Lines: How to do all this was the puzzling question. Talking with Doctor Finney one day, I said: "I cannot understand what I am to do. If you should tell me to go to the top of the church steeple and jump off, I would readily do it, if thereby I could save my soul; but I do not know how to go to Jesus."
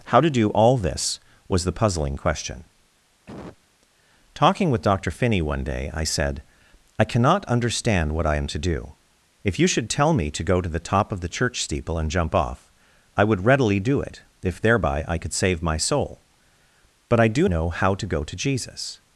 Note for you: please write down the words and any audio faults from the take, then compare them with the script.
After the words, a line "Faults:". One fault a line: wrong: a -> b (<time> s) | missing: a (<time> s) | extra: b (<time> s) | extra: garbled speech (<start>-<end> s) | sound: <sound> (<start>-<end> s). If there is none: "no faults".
How to do all this was the puzzling question. Talking with Doctor Finney one day, I said: "I cannot understand what I am to do. If you should tell me to go to the top of the church steeple and jump off, I would readily do it, if thereby I could save my soul; but I do know how to go to Jesus."
Faults:
sound: cough (3.3-3.6 s)
missing: not (17.5 s)